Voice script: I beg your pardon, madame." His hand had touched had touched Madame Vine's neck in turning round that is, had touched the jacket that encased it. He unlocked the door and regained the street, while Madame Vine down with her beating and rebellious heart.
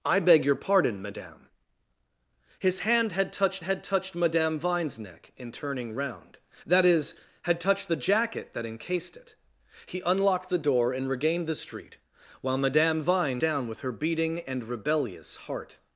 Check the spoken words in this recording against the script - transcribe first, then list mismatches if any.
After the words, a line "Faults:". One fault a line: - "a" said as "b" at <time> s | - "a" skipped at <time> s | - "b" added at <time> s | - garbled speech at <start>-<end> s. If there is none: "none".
I beg your pardon, madame." His hand had touched had touched Madame Vine's neck in turning round that is, had touched the jacket that encased it. He unlocked the door and regained the street, while Madame Vine down with her beating and rebellious heart.
Faults:
none